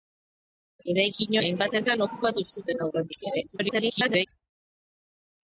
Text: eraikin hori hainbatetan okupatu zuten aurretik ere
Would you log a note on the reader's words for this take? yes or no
yes